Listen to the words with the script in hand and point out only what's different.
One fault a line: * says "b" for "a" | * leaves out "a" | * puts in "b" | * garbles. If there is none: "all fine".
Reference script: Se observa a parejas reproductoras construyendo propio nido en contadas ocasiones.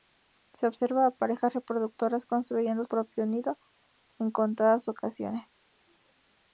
all fine